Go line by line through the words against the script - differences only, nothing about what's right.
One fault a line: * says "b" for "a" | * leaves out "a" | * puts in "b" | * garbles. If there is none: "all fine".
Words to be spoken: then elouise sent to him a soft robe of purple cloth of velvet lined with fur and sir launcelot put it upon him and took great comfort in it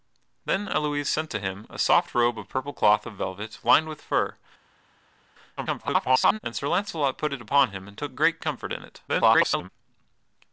* garbles
* garbles